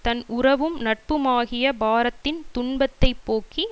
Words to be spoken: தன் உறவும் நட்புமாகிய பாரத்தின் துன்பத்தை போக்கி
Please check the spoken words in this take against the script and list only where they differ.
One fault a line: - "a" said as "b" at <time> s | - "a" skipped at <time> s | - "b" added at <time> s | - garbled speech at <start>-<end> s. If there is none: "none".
none